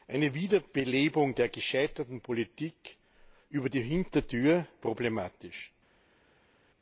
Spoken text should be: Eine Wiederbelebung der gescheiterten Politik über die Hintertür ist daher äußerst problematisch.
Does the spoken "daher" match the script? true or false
false